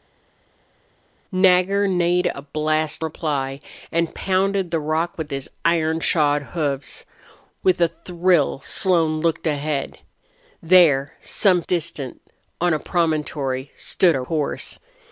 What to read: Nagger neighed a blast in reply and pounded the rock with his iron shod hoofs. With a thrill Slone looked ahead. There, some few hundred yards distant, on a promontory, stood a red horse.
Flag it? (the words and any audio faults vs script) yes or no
yes